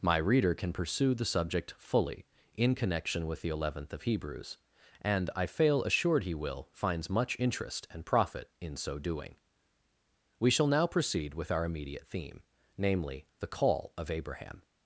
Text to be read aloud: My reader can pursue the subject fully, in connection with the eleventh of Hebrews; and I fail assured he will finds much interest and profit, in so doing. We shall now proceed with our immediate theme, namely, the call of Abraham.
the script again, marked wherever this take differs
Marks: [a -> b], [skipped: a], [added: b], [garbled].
My reader can pursue the subject fully, in connection with the eleventh of Hebrews; and I fail assured he will finds much interest and profit, in so doing. We shall now proceed with our immediate theme, namely, the call of Abraham.